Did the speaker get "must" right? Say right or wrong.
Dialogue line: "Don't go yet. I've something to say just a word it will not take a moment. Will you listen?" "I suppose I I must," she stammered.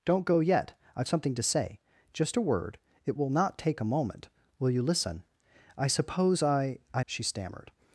wrong